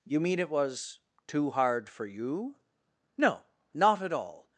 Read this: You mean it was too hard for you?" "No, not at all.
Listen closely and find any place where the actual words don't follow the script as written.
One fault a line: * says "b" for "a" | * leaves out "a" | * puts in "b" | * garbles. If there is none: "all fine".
all fine